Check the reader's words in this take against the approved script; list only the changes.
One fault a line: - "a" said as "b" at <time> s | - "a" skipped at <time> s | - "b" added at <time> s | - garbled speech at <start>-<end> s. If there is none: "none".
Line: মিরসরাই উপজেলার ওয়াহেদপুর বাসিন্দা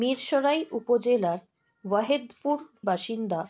none